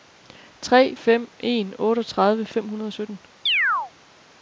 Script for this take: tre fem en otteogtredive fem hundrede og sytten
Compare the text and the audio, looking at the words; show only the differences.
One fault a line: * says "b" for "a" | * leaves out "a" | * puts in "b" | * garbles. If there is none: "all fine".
all fine